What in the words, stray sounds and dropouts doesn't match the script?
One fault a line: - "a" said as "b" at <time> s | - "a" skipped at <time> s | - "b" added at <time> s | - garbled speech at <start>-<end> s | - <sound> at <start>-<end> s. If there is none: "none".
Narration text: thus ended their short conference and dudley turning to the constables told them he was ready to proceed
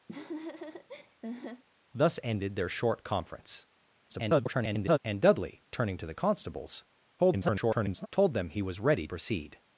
- laugh at 0.1-1.6 s
- garbled speech at 4.1-5.0 s
- garbled speech at 7.2-8.1 s
- "to" skipped at 9.1 s